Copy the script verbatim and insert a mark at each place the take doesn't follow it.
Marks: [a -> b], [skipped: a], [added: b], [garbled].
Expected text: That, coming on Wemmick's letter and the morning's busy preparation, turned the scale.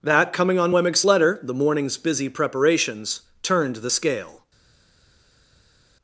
That, coming on Wemmick's letter [skipped: and] the morning's busy [preparation, -> preparations] turned the scale.